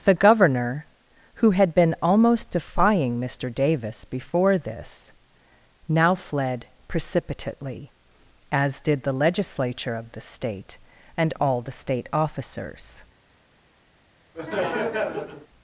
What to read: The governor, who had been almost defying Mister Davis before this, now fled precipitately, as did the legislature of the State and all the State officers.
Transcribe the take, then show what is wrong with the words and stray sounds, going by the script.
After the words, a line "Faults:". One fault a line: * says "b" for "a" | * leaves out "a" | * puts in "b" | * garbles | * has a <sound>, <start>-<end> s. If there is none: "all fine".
The governor, who had been almost defying Mister Davis before this, now fled precipitately, as did the legislature of the State and all the State officers.
Faults:
* has a laugh, 14.3-15.5 s